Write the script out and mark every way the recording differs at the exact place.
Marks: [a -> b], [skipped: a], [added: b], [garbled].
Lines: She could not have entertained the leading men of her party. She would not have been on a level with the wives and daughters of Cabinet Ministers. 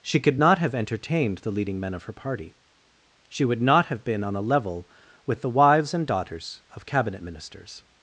She could not have entertained the leading men of her party. She would not have been on a level with the wives and daughters of Cabinet Ministers.